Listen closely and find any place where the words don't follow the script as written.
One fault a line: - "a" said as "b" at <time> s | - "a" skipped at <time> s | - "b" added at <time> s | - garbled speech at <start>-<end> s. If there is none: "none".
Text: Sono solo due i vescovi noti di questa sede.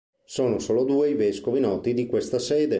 none